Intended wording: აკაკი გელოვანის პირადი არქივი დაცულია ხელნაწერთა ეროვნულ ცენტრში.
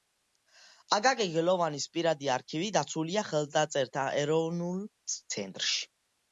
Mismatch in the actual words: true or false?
false